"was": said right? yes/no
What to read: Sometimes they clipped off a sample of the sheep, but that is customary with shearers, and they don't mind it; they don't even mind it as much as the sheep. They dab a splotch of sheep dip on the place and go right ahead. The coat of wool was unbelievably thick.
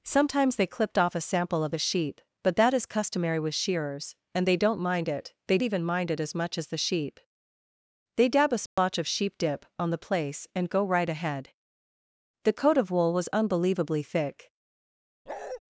yes